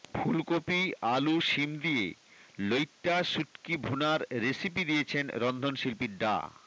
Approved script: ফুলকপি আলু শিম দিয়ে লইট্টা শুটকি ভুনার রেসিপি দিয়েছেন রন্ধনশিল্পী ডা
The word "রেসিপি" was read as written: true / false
true